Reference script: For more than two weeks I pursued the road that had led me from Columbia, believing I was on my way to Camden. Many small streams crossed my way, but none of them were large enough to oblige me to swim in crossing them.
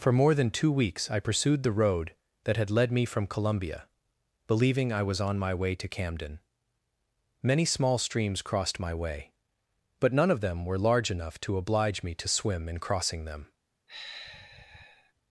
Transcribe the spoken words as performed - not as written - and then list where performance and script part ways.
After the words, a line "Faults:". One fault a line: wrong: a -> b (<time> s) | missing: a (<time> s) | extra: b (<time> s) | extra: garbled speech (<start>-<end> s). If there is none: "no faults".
For more than two weeks I pursued the road that had led me from Columbia, believing I was on my way to Camden. Many small streams crossed my way, but none of them were large enough to oblige me to swim in crossing them.
Faults:
no faults